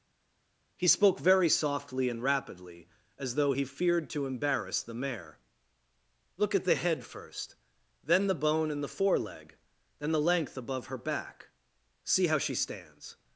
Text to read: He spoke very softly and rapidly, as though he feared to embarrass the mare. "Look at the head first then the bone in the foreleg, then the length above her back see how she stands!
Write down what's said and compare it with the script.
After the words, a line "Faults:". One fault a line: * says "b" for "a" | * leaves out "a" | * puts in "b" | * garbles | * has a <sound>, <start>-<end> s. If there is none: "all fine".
He spoke very softly and rapidly, as though he feared to embarrass the mare. "Look at the head first then the bone in the foreleg, then the length above her back see how she stands!
Faults:
all fine